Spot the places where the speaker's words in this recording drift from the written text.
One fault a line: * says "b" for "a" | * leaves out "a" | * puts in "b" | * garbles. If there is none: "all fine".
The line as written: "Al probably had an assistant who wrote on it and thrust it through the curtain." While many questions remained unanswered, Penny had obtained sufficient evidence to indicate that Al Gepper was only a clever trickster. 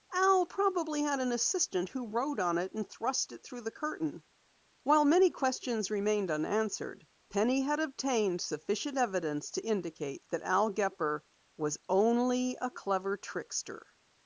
all fine